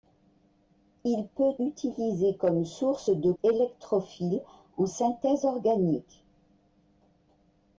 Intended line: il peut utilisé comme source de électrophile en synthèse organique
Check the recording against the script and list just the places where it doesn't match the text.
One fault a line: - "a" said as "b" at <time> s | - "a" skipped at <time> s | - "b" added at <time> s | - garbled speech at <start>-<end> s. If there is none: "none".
none